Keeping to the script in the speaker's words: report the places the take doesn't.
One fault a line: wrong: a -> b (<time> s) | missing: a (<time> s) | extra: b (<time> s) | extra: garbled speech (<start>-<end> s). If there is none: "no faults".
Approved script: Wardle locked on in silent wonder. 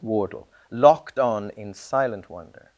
no faults